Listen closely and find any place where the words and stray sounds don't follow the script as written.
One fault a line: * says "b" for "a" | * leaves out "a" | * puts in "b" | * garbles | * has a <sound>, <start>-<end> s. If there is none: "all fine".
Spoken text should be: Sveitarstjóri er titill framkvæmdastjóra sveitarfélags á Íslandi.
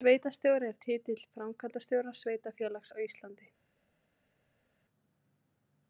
all fine